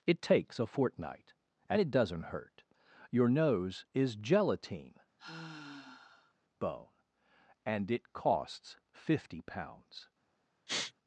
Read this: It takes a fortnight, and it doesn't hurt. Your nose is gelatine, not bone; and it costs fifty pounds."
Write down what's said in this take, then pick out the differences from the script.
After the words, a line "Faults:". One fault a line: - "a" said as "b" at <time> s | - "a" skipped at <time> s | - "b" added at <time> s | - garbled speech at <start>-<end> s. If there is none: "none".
It takes a fortnight, and it doesn't hurt. Your nose is gelatine, bone; and it costs fifty pounds."
Faults:
- "not" skipped at 5.0 s